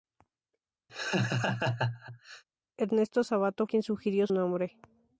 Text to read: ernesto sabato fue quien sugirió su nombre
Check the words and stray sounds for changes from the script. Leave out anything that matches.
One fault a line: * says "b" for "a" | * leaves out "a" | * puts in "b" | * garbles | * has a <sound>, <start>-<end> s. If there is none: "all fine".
* has a laugh, 0.9-2.4 s
* leaves out "fue"
* leaves out "su"